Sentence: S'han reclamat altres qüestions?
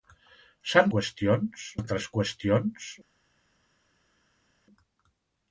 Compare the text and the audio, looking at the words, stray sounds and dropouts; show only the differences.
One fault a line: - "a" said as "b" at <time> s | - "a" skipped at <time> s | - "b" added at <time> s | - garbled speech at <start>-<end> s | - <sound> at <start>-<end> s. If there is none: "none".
- "reclamat" said as "qüestions" at 1.0 s